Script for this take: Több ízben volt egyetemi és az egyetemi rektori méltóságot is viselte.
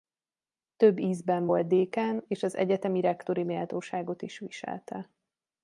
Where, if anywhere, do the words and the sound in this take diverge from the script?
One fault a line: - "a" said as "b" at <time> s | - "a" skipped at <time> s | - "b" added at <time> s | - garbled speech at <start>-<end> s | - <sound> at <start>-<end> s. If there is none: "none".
- "egyetemi" said as "dékán" at 1.7 s